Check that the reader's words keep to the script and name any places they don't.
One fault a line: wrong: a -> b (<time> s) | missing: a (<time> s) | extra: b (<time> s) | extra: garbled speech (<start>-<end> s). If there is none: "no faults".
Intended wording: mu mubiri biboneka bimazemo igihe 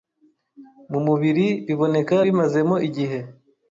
no faults